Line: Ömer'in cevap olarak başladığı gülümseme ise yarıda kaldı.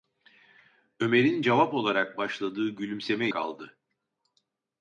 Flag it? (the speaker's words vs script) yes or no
yes